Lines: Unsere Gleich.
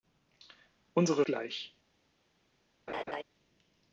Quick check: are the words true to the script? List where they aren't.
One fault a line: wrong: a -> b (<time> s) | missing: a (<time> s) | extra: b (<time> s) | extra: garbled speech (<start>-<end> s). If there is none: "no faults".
no faults